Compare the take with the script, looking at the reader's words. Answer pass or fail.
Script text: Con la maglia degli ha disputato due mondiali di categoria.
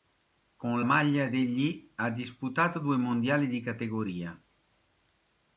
fail